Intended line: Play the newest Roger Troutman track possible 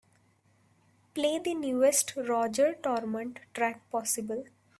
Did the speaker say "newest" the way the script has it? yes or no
yes